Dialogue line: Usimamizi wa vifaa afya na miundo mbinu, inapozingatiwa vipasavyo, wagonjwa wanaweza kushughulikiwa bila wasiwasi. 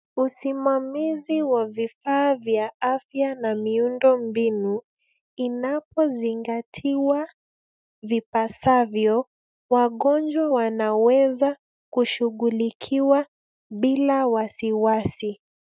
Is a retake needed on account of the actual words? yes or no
yes